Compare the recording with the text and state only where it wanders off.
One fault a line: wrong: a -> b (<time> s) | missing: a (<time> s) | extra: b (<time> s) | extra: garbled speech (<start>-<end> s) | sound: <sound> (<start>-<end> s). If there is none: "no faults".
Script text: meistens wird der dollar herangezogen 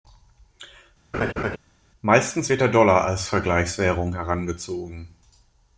sound: laugh (1.1-1.6 s)
extra: als vergleichswährung (3.0 s)